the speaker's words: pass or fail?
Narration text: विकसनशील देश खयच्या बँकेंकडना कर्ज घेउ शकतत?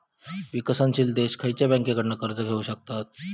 pass